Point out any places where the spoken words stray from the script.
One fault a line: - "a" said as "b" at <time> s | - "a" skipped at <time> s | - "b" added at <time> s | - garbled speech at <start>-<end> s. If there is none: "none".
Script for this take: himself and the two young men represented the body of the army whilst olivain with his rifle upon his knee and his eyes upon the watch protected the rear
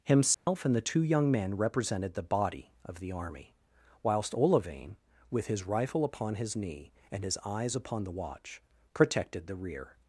none